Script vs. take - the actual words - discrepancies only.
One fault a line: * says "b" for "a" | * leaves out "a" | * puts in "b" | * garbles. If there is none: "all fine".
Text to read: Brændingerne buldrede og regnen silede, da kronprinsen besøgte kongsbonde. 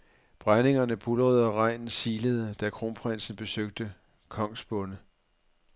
all fine